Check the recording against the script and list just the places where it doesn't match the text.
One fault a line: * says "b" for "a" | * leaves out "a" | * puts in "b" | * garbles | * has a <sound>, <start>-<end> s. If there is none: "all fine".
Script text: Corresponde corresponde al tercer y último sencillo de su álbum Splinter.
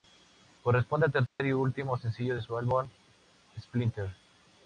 * leaves out "corresponde"
* has a dropout, 1.3-1.4 s